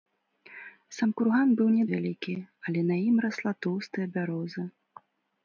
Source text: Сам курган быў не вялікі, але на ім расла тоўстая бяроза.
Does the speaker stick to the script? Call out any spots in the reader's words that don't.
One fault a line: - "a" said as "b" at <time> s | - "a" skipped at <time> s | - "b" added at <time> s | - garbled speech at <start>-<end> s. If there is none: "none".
none